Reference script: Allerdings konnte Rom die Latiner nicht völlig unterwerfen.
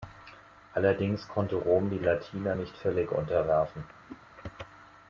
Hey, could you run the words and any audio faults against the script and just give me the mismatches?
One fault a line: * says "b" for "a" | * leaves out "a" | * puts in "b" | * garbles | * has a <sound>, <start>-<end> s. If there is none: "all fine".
* has a whoosh, 4.1-4.2 s